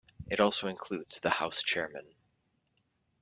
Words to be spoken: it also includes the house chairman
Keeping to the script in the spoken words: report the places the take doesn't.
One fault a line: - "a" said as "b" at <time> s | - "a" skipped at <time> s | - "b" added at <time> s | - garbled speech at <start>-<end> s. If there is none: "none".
none